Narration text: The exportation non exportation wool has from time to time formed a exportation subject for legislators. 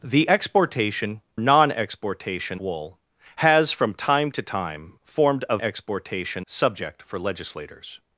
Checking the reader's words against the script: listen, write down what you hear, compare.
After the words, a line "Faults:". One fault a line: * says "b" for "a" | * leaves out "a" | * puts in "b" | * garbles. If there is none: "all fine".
The exportation non exportation wool has from time to time formed a exportation subject for legislators.
Faults:
all fine